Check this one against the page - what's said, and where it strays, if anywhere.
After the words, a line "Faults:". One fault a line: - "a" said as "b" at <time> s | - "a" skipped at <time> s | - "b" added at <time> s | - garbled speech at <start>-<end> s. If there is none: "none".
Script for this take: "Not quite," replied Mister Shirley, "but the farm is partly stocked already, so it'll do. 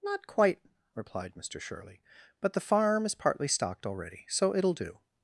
"Not quite," replied Mister Shirley, "but the farm is partly stocked already, so it'll do.
Faults:
none